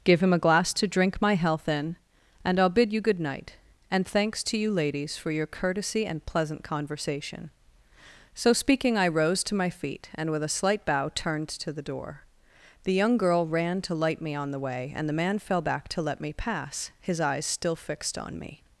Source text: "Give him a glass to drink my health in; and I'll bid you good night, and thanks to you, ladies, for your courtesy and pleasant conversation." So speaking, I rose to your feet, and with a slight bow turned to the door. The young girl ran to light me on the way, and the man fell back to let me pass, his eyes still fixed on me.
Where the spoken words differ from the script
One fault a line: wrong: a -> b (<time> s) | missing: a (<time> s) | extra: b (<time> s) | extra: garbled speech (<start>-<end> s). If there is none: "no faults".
wrong: your -> my (9.6 s)